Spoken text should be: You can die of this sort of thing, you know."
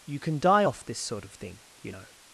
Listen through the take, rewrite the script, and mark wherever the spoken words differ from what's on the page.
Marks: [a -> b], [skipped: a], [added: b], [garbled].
You can die [of -> off] this sort of thing, you know."